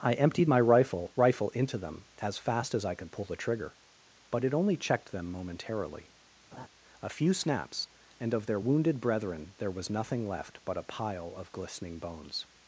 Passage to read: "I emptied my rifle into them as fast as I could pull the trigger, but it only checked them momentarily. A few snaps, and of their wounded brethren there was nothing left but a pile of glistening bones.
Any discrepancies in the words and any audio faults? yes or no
yes